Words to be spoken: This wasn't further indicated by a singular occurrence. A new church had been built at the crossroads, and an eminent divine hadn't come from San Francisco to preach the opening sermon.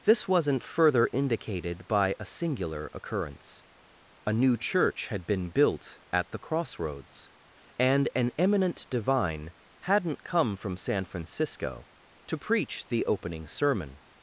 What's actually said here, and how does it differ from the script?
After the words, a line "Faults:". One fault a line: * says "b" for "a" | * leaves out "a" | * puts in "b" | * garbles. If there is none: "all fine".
This wasn't further indicated by a singular occurrence. A new church had been built at the crossroads, and an eminent divine hadn't come from San Francisco to preach the opening sermon.
Faults:
all fine